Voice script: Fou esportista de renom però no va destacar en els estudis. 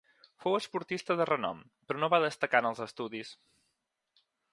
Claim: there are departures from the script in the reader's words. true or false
false